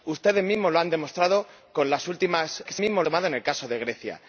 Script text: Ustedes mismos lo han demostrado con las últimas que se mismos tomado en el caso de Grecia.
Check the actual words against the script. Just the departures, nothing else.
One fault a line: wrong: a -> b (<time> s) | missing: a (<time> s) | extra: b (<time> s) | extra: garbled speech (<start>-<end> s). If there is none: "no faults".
no faults